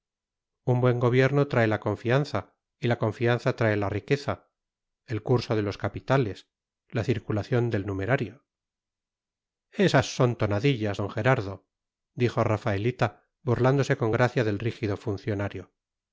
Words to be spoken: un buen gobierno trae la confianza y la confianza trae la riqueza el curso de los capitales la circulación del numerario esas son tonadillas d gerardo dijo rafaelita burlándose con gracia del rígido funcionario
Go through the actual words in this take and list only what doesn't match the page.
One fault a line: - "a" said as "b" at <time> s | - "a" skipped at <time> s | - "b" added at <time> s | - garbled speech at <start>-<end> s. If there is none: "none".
none